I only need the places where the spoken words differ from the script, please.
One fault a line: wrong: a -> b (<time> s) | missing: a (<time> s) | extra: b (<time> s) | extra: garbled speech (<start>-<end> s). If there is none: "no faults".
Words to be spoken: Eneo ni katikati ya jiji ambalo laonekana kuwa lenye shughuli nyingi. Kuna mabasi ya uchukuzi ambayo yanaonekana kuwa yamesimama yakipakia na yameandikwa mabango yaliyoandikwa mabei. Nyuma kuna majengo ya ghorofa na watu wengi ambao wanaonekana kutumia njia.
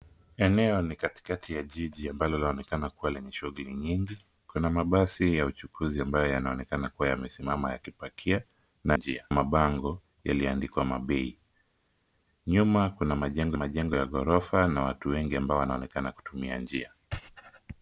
wrong: yameandikwa -> njia (8.9 s)
extra: majengo (13.5 s)